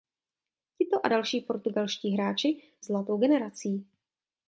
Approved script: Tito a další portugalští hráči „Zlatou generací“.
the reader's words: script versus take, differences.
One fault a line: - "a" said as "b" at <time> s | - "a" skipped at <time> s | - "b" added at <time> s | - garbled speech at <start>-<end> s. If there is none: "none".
none